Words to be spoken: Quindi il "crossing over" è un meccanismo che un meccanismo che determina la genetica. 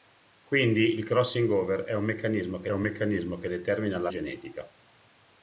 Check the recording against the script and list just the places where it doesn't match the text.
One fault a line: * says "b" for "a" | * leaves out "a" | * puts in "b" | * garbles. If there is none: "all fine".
all fine